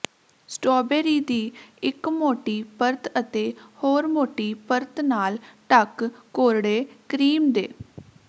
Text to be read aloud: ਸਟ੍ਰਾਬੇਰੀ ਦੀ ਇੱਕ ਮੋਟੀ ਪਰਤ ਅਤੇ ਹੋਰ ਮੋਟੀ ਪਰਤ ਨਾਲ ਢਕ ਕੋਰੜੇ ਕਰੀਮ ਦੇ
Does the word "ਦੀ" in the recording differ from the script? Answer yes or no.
no